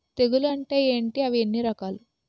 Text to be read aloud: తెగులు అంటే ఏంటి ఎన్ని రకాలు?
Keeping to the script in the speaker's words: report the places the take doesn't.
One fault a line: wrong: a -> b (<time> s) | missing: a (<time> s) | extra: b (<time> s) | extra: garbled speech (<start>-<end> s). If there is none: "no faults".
extra: అవి (1.2 s)